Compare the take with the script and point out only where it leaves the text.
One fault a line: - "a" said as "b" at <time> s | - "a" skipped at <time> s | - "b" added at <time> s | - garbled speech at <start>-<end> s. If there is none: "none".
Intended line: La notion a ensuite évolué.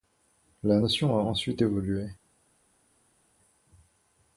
none